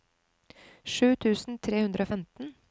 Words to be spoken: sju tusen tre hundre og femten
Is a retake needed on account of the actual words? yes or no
no